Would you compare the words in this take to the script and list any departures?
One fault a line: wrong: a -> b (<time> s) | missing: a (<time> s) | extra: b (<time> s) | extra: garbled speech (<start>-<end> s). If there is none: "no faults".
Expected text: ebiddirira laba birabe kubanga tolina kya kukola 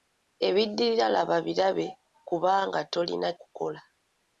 missing: kya (3.3 s)